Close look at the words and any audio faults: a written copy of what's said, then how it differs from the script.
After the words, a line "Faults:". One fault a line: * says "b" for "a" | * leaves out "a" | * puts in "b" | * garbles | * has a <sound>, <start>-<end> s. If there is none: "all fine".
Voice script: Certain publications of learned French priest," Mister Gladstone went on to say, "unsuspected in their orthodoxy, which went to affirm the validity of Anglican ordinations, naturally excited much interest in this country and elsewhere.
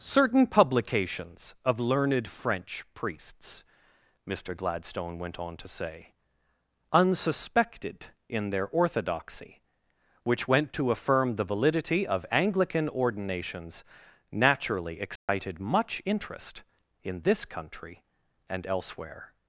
Certain publications of learned French priests," Mister Gladstone went on to say, "unsuspected in their orthodoxy, which went to affirm the validity of Anglican ordinations, naturally excited much interest in this country and elsewhere.
Faults:
* says "priests" for "priest"
* has a dropout, 15.2-15.3 s